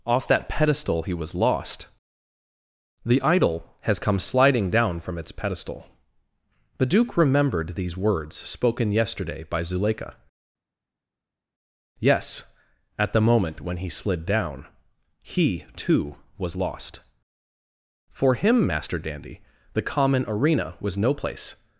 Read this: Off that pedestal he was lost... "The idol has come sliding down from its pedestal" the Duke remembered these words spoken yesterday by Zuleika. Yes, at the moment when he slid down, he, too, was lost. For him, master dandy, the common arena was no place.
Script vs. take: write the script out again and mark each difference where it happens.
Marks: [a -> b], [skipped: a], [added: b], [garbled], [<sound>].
Off that pedestal he was lost... "The idol has come sliding down from its pedestal" the Duke remembered these words spoken yesterday by Zuleika. Yes, at the moment when he slid down, he, too, was lost. For him, master dandy, the common arena was no place.